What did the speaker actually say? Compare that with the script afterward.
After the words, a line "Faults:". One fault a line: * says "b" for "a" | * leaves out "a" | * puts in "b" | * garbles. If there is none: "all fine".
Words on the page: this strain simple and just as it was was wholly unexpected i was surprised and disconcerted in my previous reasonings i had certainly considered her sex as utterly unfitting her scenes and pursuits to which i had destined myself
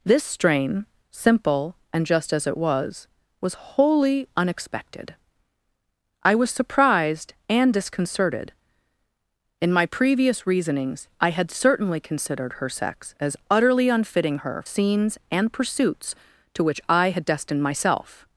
this strain simple and just as it was was wholly unexpected i was surprised and disconcerted in my previous reasonings i had certainly considered her sex as utterly unfitting her scenes and pursuits to which i had destined myself
Faults:
all fine